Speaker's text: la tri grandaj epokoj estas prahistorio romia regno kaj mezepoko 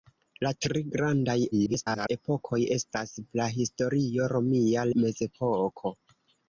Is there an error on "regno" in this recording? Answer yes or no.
yes